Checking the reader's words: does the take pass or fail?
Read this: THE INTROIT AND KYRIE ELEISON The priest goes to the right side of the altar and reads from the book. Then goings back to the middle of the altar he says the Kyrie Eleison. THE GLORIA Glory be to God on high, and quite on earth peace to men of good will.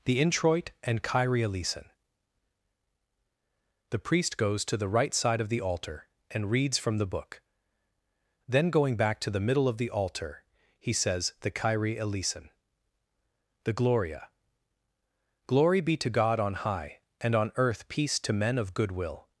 fail